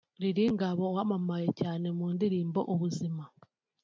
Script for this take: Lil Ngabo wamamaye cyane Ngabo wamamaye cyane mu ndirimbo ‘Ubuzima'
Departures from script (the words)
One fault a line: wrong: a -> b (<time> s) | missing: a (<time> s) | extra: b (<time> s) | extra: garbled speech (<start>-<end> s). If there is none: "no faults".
missing: Ngabo wamamaye cyane (1.9 s)